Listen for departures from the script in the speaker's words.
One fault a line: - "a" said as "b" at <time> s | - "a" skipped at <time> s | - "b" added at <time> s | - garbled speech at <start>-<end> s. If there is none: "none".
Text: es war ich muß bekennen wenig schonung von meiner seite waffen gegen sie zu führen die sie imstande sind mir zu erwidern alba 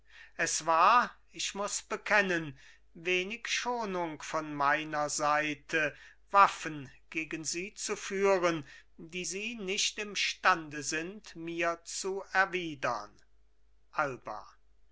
- "nicht" added at 9.6 s